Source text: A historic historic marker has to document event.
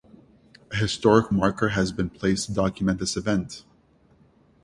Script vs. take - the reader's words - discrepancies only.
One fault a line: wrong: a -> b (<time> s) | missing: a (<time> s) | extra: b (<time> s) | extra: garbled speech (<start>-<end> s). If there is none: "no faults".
missing: historic (1.3 s)
extra: been placed (1.9 s)
extra: this (3.0 s)